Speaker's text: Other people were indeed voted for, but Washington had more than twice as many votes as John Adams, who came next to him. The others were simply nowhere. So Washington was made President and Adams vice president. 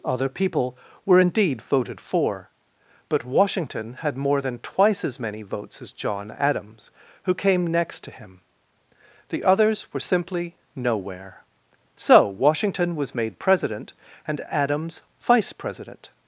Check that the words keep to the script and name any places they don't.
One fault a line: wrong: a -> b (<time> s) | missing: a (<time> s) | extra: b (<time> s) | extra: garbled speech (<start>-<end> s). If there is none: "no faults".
no faults